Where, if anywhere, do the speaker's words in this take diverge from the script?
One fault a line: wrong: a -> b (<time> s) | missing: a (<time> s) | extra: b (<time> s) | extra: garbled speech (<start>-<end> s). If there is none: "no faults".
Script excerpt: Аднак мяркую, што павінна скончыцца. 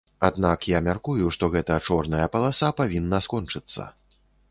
extra: я (0.7 s)
extra: гэта чорная паласа (1.6 s)